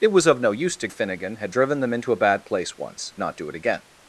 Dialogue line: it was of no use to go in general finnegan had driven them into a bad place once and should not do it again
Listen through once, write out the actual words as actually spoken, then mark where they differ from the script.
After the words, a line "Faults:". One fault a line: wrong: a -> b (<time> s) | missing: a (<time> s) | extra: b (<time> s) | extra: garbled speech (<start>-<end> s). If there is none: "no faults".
it was of no use to finnegan had driven them into a bad place once not do it again
Faults:
missing: go in general (0.9 s)
missing: and should (3.1 s)